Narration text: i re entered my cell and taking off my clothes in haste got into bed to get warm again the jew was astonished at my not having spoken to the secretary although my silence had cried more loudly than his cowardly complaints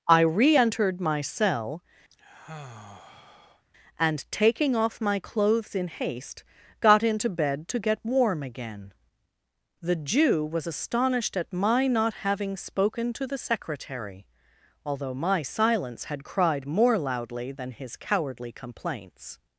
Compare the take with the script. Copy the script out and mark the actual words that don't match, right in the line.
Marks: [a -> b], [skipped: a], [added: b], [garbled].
i re entered my cell and taking off my clothes in haste got into bed to get warm again the jew was astonished at my not having spoken to the secretary although my silence had cried more loudly than his cowardly complaints